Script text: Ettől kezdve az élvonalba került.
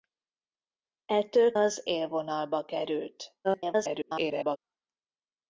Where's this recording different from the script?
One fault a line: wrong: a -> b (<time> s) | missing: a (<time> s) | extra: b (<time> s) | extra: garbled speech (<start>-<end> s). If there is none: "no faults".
missing: kezdve (1.5 s)
extra: garbled speech (3.4-4.6 s)